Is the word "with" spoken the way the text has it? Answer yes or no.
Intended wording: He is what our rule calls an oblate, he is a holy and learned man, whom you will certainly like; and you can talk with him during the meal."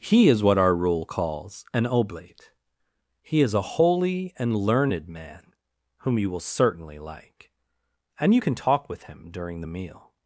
yes